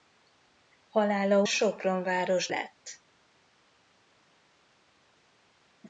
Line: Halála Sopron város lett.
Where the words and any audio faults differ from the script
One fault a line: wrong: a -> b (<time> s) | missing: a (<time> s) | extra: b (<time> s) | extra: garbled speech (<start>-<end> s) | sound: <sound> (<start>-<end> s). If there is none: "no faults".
no faults